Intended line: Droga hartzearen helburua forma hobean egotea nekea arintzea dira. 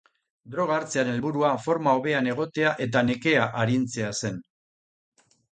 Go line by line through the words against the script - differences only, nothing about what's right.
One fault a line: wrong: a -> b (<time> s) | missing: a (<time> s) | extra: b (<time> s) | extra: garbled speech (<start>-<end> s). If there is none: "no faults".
extra: eta (2.9 s)
wrong: dira -> zen (4.2 s)